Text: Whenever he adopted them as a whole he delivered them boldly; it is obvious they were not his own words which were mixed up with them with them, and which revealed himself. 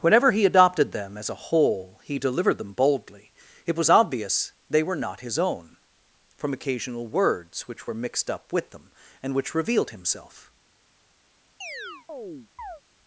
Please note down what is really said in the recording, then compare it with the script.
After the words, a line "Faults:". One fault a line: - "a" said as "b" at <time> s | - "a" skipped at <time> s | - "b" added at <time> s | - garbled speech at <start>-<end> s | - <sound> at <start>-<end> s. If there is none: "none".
Whenever he adopted them as a whole he delivered them boldly; it was obvious they were not his own from occasional words which were mixed up with them, and which revealed himself.
Faults:
- "is" said as "was" at 3.8 s
- "from occasional" added at 6.4 s
- "with them" skipped at 8.9 s
- chirp at 11.6-12.8 s